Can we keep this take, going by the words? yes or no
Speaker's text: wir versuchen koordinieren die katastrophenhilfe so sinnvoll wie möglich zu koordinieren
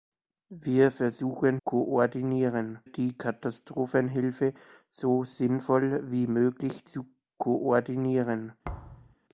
yes